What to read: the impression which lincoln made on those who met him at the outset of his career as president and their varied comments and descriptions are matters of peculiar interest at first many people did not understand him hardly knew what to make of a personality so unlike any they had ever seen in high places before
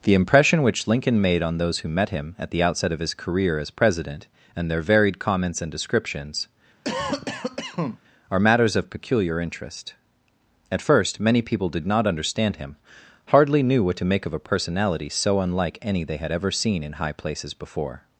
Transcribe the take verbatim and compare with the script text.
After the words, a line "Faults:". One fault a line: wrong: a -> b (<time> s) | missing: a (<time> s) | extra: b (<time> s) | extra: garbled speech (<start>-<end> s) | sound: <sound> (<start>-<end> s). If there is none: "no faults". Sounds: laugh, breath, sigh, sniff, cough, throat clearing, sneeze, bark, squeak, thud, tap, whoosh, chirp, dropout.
the impression which lincoln made on those who met him at the outset of his career as president and their varied comments and descriptions are matters of peculiar interest at first many people did not understand him hardly knew what to make of a personality so unlike any they had ever seen in high places before
Faults:
sound: cough (6.8-8.0 s)